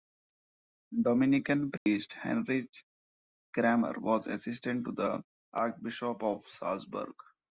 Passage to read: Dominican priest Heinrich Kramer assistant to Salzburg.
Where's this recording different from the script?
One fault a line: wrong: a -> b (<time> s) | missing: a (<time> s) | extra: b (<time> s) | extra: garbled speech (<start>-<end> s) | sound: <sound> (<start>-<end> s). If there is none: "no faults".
sound: dropout (1.8-1.9 s)
extra: was (4.0 s)
extra: the Archbishop of (4.9 s)